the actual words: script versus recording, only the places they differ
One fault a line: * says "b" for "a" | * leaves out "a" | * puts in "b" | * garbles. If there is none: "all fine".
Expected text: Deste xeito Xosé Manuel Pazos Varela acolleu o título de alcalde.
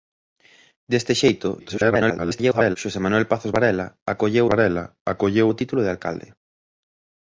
* garbles
* puts in "Varela acolleu"